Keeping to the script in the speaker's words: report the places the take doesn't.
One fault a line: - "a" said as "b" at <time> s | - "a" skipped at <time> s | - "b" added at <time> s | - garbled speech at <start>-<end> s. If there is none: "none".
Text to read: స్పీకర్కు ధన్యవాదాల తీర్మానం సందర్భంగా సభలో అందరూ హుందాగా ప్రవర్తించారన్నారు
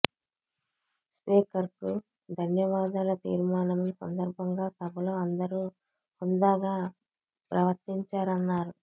none